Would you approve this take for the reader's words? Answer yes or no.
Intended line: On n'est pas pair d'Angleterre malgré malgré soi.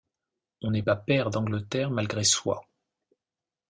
no